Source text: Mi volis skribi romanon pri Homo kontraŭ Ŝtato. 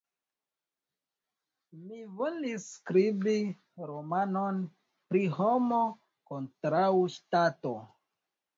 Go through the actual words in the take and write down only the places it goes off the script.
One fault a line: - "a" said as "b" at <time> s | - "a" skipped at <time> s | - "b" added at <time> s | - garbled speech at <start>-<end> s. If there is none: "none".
none